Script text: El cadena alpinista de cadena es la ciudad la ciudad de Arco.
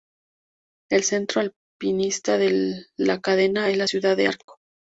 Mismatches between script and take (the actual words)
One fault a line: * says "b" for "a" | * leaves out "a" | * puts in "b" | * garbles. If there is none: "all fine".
* says "centro" for "cadena"
* puts in "la"
* leaves out "la ciudad"